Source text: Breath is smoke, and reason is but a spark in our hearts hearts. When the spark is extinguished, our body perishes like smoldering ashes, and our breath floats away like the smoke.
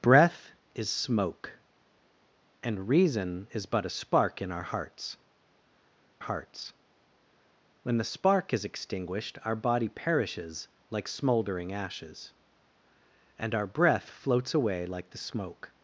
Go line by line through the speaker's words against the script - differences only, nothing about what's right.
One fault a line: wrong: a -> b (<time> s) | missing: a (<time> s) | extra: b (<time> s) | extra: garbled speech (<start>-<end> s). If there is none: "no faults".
no faults